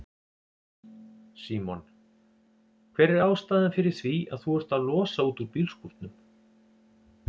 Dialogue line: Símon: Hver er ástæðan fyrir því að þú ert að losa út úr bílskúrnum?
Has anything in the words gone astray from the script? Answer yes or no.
no